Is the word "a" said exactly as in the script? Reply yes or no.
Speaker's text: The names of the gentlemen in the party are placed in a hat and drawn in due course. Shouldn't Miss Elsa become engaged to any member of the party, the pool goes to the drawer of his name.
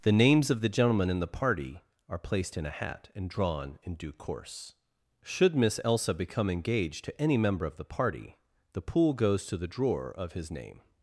yes